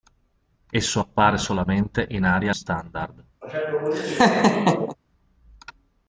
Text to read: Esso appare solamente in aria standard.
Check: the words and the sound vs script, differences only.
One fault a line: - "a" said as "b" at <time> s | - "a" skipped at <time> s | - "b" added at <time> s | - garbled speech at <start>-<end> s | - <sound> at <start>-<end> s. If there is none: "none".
- laugh at 3.4-5.0 s